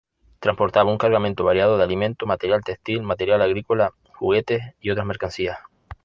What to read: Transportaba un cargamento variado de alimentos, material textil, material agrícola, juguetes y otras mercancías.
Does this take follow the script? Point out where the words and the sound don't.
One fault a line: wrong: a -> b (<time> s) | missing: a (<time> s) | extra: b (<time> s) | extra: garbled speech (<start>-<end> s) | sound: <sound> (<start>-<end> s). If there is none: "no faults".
no faults